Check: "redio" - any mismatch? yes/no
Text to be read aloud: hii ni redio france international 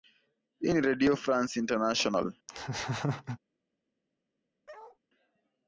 no